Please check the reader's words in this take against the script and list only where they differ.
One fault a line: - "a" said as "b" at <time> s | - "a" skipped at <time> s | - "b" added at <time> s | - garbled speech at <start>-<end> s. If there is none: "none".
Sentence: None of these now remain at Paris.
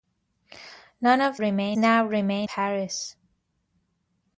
- "these" said as "remain" at 1.3 s
- "at" skipped at 2.5 s